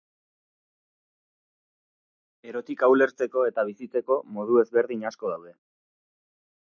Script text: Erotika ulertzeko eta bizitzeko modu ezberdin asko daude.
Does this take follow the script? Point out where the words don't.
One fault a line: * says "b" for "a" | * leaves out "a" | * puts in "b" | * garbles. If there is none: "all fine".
all fine